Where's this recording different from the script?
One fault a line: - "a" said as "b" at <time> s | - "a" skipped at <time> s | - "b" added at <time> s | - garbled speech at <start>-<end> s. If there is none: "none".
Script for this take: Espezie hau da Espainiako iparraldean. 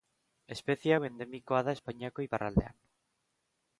- "endemikoa" added at 1.1 s